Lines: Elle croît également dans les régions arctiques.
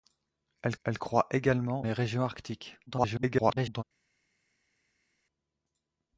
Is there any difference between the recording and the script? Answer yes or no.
yes